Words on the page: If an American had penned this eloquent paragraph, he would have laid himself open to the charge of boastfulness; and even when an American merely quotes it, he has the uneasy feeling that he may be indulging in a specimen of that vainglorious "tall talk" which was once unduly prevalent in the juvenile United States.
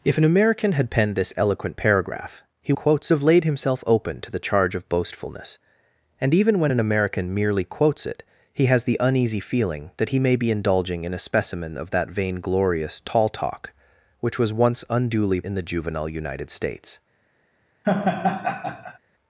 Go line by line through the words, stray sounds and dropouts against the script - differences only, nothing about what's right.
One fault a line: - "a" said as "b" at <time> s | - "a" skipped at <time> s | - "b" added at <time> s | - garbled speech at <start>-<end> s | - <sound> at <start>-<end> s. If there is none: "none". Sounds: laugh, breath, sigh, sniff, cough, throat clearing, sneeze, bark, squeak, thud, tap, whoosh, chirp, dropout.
- "would" said as "quotes" at 2.7 s
- "prevalent" skipped at 15.4 s
- laugh at 17.8-19.0 s